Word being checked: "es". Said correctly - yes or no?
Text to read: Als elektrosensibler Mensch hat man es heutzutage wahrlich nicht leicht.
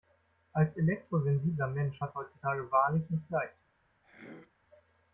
no